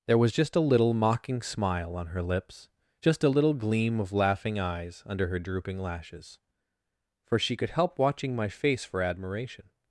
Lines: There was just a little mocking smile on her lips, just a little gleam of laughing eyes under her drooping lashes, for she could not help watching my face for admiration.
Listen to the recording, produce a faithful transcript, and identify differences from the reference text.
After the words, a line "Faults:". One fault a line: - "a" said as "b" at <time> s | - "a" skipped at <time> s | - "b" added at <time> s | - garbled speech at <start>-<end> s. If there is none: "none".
There was just a little mocking smile on her lips, just a little gleam of laughing eyes under her drooping lashes, for she could help watching my face for admiration.
Faults:
- "not" skipped at 7.7 s